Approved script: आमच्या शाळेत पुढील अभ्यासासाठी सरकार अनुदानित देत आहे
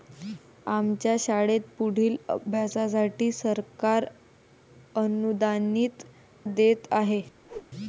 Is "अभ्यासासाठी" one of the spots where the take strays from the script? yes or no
no